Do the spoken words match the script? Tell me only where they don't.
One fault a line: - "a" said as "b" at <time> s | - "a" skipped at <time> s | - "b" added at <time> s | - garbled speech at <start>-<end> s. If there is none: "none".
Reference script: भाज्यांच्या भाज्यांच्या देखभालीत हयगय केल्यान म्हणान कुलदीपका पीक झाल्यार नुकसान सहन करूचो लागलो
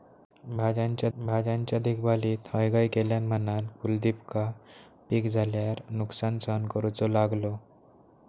none